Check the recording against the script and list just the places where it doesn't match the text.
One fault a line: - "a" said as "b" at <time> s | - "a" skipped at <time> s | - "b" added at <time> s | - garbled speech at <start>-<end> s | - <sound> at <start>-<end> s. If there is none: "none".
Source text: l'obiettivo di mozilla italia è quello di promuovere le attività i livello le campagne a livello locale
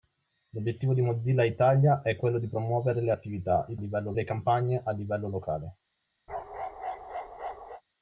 - bark at 6.3-7.8 s